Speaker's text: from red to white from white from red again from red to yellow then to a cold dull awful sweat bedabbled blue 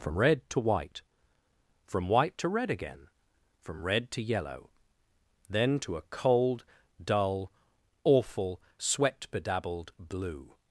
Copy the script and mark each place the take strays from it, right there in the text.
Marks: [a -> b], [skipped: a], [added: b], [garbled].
from red to white from white [from -> to] red again from red to yellow then to a cold dull awful sweat bedabbled blue